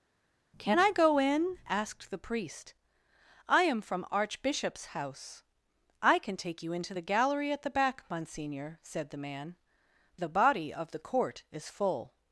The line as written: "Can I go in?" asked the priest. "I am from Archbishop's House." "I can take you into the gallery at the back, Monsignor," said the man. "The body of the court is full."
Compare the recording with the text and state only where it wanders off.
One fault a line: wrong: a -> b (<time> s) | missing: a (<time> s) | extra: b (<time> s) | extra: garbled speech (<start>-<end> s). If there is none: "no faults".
no faults